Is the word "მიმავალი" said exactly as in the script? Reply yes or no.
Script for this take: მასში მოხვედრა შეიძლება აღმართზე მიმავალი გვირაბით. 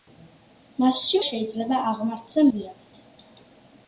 no